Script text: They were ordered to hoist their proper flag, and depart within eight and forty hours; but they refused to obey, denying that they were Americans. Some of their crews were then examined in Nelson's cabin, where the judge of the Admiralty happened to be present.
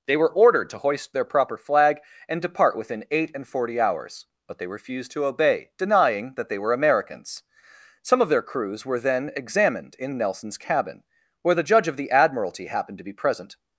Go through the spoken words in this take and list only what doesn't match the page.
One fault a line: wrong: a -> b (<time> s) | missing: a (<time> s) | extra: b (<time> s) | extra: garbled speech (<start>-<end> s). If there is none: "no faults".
no faults